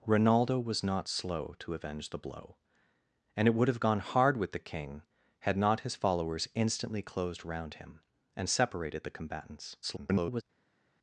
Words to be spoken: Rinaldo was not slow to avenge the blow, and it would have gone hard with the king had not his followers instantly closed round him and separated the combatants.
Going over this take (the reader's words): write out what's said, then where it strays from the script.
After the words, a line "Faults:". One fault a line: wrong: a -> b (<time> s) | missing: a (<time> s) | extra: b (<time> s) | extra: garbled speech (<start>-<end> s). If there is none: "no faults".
Rinaldo was not slow to avenge the blow, and it would have gone hard with the king had not his followers instantly closed round him and separated the combatants. [garbled]
Faults:
extra: garbled speech (9.8-10.4 s)